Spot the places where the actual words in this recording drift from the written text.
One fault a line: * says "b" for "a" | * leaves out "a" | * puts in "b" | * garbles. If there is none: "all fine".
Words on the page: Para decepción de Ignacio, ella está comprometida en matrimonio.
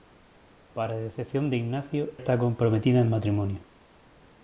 * leaves out "ella"